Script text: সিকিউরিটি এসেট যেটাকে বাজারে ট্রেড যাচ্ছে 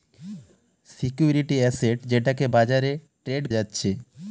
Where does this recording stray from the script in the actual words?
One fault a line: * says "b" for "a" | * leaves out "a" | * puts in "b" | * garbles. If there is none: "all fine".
all fine